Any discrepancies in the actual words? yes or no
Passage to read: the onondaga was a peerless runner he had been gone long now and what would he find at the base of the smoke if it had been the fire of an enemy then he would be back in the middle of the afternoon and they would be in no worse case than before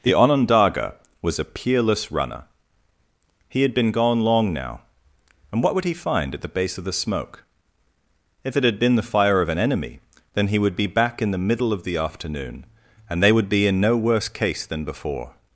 no